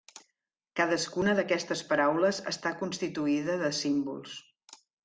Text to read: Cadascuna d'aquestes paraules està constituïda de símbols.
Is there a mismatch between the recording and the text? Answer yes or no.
no